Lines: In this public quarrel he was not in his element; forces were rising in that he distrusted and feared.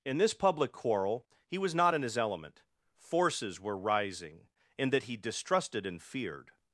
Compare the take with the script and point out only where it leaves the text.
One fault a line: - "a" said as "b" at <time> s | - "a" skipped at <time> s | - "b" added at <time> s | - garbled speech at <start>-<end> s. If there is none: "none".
none